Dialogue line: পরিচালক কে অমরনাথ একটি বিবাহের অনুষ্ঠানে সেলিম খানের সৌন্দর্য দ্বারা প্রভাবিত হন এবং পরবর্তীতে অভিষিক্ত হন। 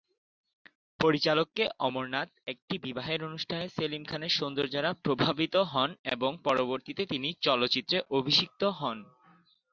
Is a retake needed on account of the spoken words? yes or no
yes